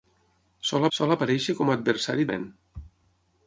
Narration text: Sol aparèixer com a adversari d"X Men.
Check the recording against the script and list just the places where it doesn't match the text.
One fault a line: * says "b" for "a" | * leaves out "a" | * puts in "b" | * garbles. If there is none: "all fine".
* puts in "sol"
* leaves out "d"X"